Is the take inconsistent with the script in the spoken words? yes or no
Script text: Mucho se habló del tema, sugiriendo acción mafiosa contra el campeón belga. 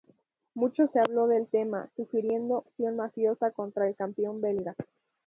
no